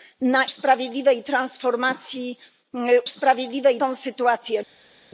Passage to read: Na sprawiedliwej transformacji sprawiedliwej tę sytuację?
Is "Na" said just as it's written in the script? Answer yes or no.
yes